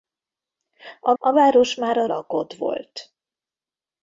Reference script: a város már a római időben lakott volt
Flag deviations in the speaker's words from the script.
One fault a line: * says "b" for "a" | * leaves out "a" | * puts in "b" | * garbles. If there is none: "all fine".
* puts in "a"
* leaves out "római időben"